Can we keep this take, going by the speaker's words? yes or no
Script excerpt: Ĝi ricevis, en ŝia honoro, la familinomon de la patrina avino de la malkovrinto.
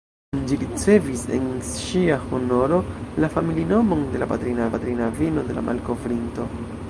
no